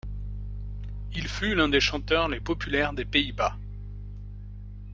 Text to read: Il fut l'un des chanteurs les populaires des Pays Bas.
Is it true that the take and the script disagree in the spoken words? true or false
false